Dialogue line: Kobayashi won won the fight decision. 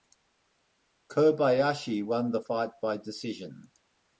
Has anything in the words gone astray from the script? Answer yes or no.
yes